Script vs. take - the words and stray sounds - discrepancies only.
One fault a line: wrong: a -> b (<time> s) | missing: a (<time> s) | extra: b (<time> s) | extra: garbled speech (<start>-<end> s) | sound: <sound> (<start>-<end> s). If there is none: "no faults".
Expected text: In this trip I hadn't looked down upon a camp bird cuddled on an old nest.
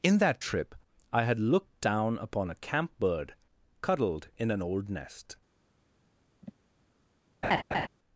wrong: this -> that (0.2 s)
wrong: hadn't -> had (1.2 s)
wrong: on -> in (4.4 s)
sound: sigh (6.4-6.5 s)
sound: laugh (7.4-7.9 s)